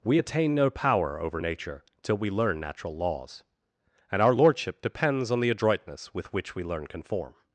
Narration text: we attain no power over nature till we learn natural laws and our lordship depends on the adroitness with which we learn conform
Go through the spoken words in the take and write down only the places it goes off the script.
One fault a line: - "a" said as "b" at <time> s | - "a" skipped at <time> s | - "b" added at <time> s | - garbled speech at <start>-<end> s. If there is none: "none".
none